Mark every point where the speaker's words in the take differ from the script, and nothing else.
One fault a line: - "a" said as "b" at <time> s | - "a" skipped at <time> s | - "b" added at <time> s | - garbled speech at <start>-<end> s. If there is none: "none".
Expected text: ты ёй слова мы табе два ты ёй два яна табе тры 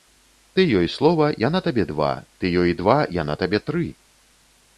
- "мы" said as "яна" at 1.5 s